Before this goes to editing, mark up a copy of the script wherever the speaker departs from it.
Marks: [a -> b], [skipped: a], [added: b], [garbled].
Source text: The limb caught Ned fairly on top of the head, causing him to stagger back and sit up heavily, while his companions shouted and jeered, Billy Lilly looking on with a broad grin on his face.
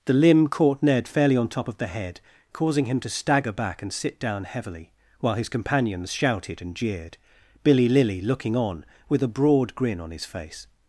The limb caught Ned fairly on top of the head, causing him to stagger back and sit [up -> down] heavily, while his companions shouted and jeered, Billy Lilly looking on with a broad grin on his face.